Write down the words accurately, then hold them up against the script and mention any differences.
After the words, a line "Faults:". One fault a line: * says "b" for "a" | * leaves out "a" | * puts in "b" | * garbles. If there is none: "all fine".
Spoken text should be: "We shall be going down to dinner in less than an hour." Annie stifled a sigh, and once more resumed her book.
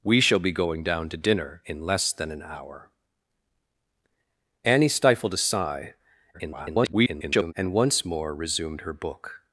"We shall be going down to dinner in less than an hour." Annie stifled a sigh, [garbled] and once more resumed her book.
Faults:
* garbles